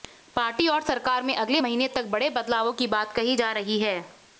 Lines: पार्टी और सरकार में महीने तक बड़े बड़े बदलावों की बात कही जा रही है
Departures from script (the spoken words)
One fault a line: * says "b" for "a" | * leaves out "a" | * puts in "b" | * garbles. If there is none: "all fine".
* puts in "अगले"
* leaves out "बड़े"